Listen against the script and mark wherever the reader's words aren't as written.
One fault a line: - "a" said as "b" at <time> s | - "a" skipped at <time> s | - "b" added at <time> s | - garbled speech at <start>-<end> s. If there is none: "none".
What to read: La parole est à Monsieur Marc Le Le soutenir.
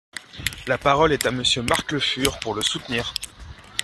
- "Fur pour" added at 2.0 s